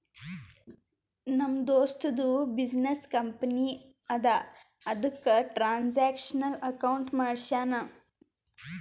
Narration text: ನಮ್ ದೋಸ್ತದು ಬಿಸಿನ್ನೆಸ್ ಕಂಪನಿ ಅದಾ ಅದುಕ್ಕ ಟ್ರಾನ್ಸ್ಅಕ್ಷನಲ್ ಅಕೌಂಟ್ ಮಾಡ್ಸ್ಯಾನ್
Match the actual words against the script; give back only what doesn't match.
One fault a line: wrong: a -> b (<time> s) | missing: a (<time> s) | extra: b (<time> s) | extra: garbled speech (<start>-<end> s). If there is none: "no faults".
no faults